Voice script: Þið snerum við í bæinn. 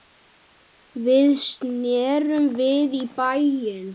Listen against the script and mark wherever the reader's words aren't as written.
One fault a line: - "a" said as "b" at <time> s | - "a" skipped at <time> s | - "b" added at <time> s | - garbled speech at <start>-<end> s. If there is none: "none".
- "Þið" said as "Við" at 1.1 s